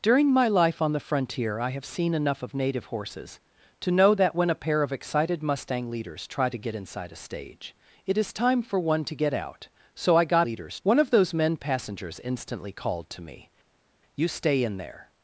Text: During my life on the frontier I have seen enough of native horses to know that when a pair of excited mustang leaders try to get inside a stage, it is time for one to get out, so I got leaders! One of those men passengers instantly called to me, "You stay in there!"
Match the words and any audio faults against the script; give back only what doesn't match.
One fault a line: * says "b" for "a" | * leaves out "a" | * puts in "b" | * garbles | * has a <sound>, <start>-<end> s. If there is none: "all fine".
all fine